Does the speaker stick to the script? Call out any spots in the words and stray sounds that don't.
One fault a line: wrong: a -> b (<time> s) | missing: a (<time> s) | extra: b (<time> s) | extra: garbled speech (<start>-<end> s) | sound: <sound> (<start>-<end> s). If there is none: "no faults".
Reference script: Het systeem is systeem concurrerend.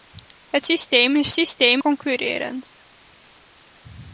no faults